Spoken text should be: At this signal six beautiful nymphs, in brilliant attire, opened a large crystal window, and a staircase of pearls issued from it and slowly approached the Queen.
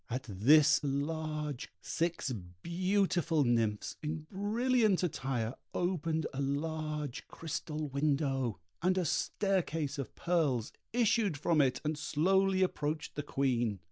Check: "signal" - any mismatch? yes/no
yes